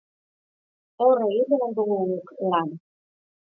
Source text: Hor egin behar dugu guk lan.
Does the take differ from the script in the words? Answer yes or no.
no